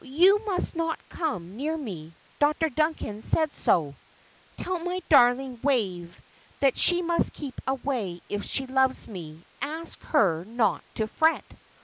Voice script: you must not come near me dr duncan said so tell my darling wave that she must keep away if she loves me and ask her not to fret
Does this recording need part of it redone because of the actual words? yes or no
yes